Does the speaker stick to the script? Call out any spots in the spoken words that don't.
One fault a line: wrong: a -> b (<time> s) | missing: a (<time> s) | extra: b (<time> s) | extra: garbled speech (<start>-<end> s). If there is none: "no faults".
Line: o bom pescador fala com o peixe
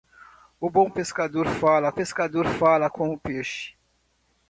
extra: pescador fala (1.9 s)